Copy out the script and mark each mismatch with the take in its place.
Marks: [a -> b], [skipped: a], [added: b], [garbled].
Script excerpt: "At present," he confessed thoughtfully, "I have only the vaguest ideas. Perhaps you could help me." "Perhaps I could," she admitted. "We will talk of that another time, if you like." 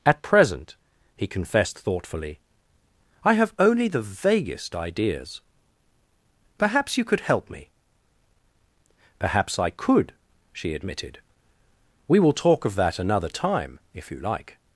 "At present," he confessed thoughtfully, "I have only the vaguest ideas. Perhaps you could help me." "Perhaps I could," she admitted. "We will talk of that another time, if you like."